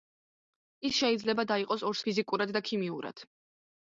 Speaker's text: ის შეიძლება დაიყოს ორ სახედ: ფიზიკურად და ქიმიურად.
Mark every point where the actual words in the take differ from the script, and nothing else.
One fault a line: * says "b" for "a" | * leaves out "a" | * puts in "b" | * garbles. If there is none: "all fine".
* leaves out "სახედ"